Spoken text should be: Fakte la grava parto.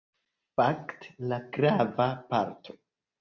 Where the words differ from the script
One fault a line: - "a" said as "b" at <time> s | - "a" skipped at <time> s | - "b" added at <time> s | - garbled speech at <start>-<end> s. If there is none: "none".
none